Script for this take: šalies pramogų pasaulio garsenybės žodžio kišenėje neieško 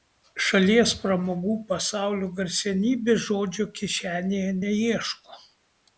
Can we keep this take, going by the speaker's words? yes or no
yes